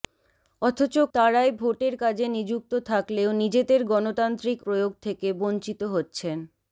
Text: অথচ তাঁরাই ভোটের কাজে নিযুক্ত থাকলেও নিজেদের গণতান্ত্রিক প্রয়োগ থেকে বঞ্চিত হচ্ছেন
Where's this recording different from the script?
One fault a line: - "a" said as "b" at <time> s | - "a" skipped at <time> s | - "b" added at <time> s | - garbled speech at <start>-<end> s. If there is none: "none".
none